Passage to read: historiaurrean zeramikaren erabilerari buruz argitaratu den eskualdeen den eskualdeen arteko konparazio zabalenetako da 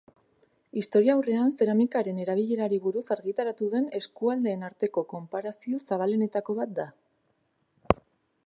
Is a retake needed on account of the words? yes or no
yes